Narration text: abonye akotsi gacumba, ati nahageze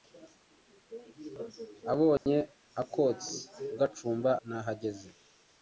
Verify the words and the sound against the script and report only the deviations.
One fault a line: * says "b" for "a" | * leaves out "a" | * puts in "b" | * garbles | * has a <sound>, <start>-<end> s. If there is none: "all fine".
* has a dropout, 2.2-2.3 s
* leaves out "ati"